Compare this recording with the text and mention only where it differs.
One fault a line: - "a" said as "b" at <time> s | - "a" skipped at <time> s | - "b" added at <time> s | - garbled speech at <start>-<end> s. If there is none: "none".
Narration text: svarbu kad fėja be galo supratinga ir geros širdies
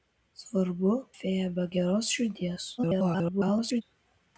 - "kad" skipped at 0.9 s
- "galo supratinga ir" skipped at 1.6 s
- garbled speech at 2.8-3.8 s